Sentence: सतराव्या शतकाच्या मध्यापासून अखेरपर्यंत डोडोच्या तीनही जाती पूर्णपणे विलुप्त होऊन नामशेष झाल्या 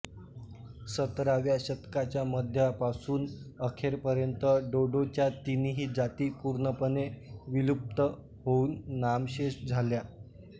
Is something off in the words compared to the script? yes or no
no